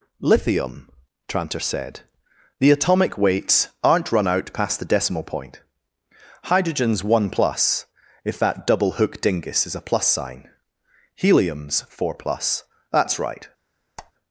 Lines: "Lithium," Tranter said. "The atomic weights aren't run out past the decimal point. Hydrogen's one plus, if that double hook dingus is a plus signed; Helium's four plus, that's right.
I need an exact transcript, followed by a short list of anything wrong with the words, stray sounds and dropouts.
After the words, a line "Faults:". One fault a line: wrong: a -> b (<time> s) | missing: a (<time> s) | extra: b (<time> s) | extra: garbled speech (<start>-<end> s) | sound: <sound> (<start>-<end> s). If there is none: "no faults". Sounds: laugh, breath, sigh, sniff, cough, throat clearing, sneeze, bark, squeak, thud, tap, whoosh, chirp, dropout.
"Lithium," Tranter said. "The atomic weights aren't run out past the decimal point. Hydrogen's one plus, if that double hook dingus is a plus sign; Helium's four plus, that's right.
Faults:
wrong: signed -> sign (10.1 s)
sound: squeak (14.0-14.1 s)